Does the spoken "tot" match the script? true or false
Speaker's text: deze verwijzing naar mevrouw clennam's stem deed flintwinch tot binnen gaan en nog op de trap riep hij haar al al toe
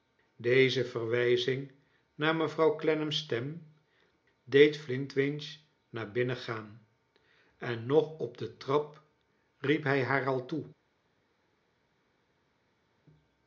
false